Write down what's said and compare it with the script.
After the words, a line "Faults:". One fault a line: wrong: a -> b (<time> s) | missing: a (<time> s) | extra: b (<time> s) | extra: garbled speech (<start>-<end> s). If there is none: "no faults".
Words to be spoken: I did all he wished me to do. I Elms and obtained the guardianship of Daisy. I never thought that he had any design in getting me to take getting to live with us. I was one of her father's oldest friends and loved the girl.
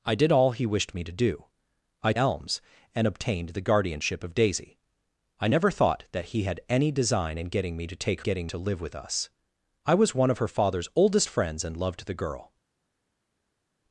I did all he wished me to do. I Elms and obtained the guardianship of Daisy. I never thought that he had any design in getting me to take getting to live with us. I was one of her father's oldest friends and loved the girl.
Faults:
no faults